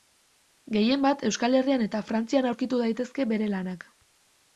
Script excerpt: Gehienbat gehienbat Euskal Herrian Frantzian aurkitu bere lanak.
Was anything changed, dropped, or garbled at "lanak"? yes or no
no